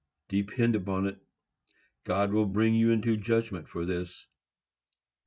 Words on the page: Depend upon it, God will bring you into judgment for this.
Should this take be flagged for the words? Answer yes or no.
no